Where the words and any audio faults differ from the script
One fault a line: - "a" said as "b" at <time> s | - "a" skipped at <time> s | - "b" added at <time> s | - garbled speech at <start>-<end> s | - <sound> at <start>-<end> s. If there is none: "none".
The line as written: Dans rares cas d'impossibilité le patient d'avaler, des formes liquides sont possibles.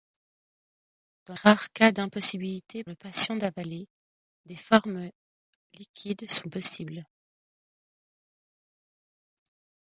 none